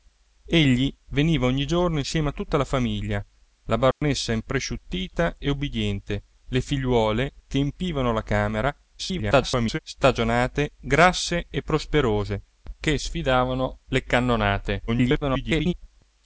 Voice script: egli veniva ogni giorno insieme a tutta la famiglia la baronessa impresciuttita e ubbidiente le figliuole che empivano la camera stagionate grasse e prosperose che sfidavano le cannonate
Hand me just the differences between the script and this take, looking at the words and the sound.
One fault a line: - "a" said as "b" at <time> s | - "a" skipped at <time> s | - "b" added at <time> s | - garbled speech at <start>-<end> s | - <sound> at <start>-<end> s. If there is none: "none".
- dropout at 3.9-4.0 s
- garbled speech at 9.0-9.8 s
- garbled speech at 14.9-15.7 s